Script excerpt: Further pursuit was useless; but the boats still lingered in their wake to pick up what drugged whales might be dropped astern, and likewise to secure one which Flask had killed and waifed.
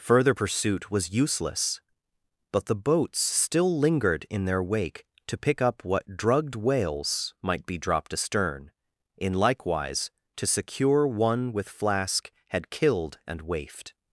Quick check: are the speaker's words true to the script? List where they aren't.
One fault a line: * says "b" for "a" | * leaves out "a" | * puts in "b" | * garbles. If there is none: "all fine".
* says "in" for "and"
* says "with" for "which"